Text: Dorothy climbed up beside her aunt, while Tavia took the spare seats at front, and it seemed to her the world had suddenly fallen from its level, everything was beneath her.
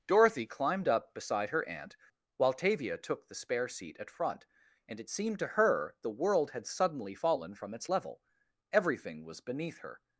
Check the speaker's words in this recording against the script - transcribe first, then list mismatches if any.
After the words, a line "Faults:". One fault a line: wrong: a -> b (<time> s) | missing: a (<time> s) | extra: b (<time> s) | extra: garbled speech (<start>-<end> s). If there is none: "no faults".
Dorothy climbed up beside her aunt, while Tavia took the spare seat at front, and it seemed to her the world had suddenly fallen from its level, everything was beneath her.
Faults:
wrong: seats -> seat (3.7 s)